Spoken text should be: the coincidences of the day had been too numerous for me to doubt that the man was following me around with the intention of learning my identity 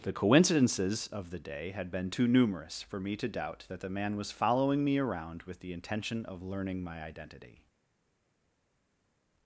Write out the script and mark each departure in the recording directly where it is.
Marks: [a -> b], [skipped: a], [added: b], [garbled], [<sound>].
the coincidences of the day had been too numerous for me to doubt that the man was following me around with the intention of learning my identity